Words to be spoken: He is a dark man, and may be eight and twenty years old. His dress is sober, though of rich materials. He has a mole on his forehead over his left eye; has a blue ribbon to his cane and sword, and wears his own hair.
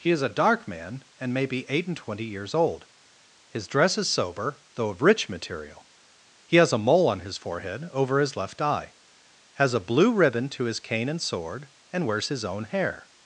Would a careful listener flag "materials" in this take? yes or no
yes